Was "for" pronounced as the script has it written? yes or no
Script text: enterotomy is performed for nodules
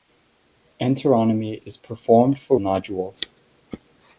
yes